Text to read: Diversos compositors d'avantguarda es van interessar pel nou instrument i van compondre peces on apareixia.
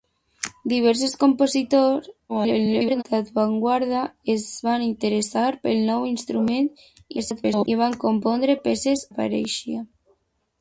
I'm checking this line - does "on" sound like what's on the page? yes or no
no